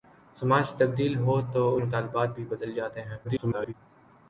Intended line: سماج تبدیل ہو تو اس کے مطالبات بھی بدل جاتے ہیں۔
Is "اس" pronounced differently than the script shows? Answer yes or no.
yes